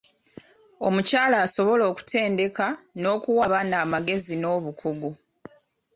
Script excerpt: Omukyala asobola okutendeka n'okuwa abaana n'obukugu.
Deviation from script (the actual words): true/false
true